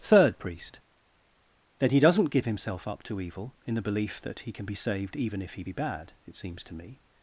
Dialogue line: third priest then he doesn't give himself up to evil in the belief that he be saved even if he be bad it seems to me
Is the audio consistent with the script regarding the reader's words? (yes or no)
no